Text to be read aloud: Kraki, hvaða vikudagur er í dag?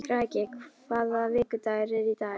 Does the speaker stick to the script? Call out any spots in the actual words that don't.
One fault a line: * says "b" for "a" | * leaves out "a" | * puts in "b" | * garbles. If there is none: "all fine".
all fine